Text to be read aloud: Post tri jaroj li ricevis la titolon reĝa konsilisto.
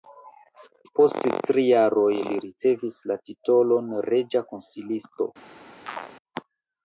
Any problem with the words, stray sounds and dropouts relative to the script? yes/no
yes